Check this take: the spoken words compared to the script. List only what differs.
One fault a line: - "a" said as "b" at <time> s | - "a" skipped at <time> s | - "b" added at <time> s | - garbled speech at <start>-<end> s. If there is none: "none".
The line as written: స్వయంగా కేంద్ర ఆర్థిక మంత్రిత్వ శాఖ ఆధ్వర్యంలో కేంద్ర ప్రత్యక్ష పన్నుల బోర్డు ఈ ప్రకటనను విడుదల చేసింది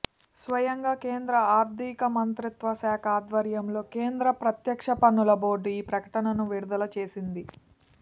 none